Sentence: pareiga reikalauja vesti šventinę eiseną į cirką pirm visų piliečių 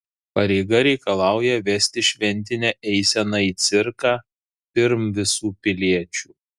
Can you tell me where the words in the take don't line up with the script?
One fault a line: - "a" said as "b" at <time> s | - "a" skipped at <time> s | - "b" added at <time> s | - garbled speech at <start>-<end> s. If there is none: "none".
none